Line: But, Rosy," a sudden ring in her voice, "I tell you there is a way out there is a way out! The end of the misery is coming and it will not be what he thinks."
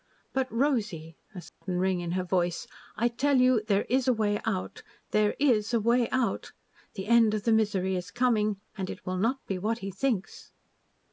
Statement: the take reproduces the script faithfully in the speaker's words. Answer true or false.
true